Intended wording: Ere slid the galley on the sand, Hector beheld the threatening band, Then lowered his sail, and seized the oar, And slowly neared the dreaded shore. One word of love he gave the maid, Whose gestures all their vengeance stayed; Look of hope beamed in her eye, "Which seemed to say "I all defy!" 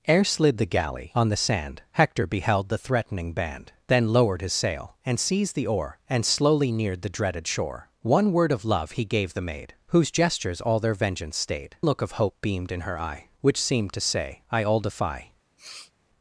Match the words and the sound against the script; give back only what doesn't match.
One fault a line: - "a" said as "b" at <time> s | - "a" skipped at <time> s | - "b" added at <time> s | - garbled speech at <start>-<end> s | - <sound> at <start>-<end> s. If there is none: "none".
- sniff at 15.6-15.9 s